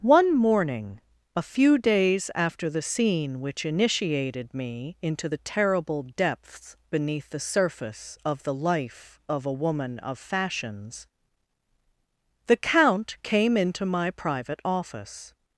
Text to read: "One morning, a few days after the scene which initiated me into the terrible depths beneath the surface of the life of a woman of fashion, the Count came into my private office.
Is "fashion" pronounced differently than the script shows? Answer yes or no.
yes